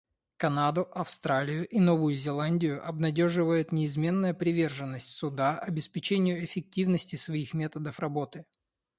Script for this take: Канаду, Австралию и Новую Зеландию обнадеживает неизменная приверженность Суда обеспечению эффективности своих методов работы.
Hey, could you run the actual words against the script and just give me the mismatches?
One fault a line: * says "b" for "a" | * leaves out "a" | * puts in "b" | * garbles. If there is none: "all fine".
all fine